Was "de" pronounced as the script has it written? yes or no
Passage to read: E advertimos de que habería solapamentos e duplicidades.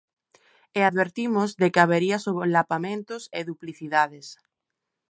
yes